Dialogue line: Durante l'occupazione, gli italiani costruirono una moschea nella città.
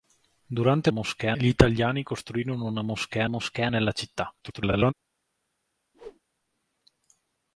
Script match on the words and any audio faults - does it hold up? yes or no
no